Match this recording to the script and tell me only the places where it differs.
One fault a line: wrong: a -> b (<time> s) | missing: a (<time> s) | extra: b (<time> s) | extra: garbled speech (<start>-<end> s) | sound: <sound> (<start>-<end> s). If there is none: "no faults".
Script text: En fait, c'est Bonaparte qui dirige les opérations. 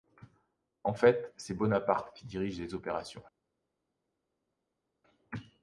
no faults